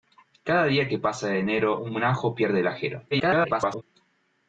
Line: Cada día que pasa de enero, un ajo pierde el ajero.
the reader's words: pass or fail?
fail